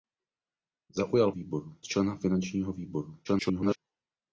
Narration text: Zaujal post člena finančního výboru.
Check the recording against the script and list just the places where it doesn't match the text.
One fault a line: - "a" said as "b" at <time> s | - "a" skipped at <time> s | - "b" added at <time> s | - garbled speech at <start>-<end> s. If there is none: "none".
- "post" said as "výboru" at 1.3 s
- garbled speech at 3.2-3.8 s